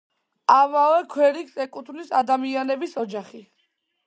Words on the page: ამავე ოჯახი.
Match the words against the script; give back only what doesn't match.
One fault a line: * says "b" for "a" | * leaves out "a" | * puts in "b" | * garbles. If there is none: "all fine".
* puts in "ქვერიგს ეკუთვნის ადამიანების"